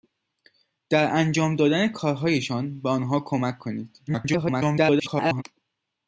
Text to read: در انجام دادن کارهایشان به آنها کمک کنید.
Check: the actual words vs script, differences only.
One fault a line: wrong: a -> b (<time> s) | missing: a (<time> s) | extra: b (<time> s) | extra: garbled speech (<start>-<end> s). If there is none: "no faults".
extra: garbled speech (4.1-5.4 s)